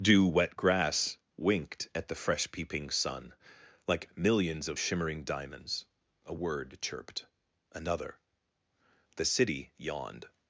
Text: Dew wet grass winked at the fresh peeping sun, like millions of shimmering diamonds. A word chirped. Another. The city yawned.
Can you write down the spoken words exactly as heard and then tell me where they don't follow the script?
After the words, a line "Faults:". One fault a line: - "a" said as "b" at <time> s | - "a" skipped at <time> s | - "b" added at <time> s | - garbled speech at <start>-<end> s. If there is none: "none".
Dew wet grass winked at the fresh peeping sun, like millions of shimmering diamonds. A word chirped. Another. The city yawned.
Faults:
none